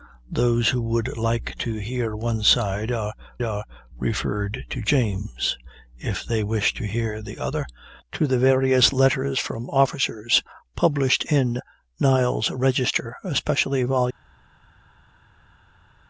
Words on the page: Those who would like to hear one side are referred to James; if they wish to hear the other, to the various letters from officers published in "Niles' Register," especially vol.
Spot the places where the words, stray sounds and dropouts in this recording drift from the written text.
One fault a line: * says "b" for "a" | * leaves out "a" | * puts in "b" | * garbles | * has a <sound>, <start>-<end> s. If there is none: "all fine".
* puts in "are"